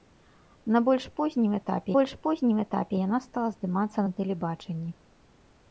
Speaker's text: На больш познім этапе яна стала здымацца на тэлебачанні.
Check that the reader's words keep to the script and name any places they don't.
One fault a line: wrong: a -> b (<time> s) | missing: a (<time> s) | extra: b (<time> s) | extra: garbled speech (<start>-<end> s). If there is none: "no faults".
extra: больш познім этапе (1.9 s)